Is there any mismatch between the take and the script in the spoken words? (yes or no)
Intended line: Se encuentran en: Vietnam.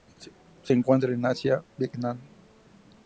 yes